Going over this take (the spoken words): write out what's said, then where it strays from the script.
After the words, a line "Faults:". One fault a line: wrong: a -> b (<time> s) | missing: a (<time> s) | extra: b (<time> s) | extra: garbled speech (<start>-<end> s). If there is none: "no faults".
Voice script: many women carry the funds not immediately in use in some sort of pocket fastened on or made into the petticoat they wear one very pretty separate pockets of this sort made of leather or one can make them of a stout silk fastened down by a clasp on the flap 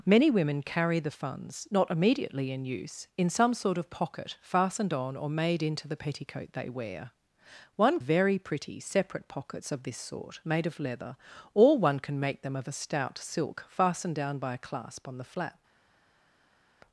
many women carry the funds not immediately in use in some sort of pocket fastened on or made into the petticoat they wear one very pretty separate pockets of this sort made of leather or one can make them of a stout silk fastened down by a clasp on the flap
Faults:
no faults